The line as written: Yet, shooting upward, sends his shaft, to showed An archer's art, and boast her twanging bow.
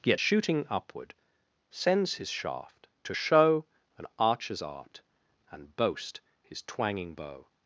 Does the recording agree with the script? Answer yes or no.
no